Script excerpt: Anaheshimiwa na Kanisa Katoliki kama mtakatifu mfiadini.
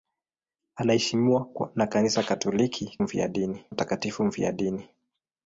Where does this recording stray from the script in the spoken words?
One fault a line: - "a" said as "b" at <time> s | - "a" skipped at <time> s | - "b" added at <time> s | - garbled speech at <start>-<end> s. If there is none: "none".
- "kama" said as "mfiadini" at 3.0 s